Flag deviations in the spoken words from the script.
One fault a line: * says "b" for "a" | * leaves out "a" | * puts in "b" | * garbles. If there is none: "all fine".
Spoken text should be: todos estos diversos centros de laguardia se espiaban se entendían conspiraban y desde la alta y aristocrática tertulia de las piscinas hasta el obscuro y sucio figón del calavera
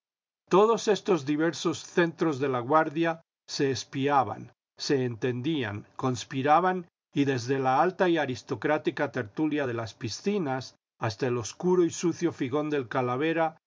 all fine